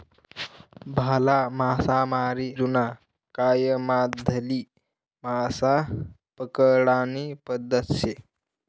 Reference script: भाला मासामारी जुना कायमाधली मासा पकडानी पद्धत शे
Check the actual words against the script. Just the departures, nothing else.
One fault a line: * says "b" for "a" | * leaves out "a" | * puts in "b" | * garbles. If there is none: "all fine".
all fine